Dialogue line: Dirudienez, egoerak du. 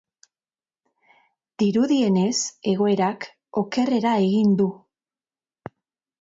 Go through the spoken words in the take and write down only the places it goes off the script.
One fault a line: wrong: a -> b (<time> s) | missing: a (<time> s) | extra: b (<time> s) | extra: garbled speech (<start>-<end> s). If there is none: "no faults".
extra: okerrera egin (3.6 s)